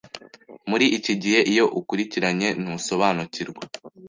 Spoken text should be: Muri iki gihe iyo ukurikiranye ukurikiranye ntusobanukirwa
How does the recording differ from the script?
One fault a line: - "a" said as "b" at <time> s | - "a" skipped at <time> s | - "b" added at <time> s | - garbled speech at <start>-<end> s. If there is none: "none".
- "ukurikiranye" skipped at 2.5 s